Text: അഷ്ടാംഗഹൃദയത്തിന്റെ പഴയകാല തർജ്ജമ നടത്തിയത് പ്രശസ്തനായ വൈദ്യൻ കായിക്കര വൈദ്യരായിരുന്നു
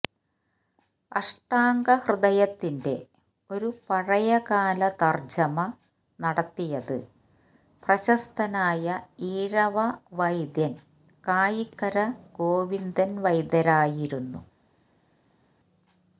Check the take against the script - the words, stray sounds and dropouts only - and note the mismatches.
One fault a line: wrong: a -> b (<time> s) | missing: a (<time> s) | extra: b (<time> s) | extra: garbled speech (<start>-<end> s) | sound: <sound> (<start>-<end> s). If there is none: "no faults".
extra: ഒരു (3.5 s)
extra: ഈഴവ (9.3 s)
extra: ഗോവിന്ദൻ (12.4 s)